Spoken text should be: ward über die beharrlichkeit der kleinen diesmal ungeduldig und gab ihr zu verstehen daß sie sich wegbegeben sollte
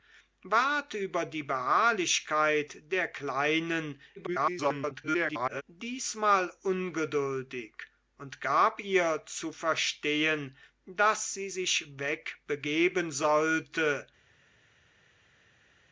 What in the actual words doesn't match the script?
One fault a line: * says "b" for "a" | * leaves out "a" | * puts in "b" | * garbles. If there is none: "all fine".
* garbles